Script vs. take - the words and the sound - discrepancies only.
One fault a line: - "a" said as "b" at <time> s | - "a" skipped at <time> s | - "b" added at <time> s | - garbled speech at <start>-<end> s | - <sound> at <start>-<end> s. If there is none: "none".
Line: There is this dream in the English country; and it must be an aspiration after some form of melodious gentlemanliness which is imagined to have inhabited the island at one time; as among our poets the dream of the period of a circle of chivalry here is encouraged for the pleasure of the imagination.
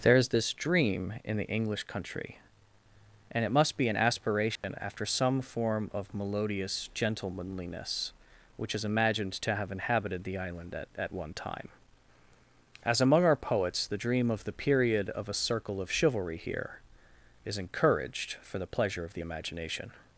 - dropout at 4.6-4.6 s
- "at" added at 11.0 s